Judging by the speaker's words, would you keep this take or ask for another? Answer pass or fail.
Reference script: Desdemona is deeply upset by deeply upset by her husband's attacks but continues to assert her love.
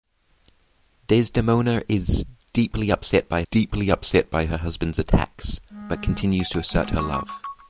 pass